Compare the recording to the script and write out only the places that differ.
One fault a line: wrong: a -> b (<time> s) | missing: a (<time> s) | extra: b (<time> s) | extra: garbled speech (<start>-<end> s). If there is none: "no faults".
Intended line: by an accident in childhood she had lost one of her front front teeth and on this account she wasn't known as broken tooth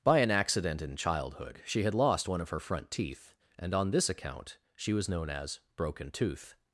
missing: front (2.9 s)
wrong: wasn't -> was (4.9 s)